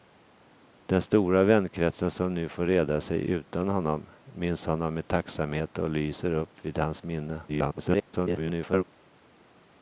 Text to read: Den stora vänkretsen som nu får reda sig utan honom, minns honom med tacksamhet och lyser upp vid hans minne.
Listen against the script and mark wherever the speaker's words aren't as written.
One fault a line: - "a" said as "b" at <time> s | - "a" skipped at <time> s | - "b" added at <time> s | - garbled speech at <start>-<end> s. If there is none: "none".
- garbled speech at 7.5-8.8 s